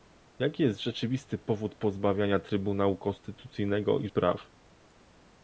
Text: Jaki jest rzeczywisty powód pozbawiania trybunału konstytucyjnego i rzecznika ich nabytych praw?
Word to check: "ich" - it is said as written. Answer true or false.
false